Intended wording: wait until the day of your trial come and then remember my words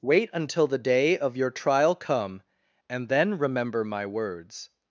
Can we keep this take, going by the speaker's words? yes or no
yes